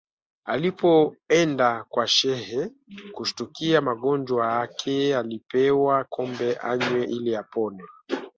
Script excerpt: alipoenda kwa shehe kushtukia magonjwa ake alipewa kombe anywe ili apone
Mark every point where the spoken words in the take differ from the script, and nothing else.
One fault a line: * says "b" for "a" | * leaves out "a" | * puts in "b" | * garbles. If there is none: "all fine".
all fine